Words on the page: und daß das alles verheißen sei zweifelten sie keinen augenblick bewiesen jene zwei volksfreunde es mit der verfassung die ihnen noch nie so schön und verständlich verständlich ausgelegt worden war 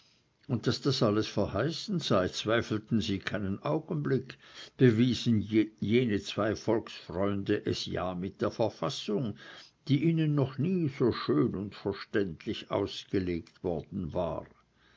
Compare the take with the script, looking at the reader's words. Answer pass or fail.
fail